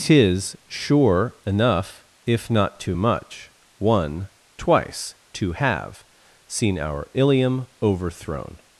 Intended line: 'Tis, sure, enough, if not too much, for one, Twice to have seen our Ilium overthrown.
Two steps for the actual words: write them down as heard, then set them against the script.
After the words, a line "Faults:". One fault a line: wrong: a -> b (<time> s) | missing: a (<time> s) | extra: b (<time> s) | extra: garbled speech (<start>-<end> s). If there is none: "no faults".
'Tis, sure, enough, if not too much, one, Twice to have seen our Ilium overthrown.
Faults:
missing: for (3.5 s)